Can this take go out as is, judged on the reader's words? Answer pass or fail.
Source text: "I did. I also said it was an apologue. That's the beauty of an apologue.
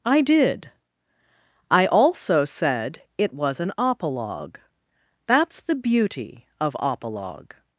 fail